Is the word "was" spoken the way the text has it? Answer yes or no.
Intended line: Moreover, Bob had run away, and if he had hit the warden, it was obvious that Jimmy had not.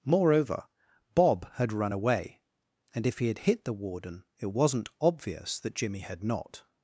no